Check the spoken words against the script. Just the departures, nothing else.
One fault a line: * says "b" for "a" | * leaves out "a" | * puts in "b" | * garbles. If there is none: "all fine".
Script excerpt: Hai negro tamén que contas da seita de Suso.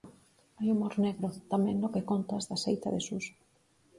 * puts in "humor"
* puts in "no"